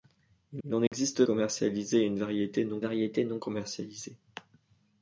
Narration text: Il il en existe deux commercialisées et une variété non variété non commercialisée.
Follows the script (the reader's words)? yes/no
yes